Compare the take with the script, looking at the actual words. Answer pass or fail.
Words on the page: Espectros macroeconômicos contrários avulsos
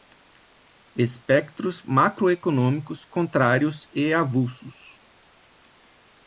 fail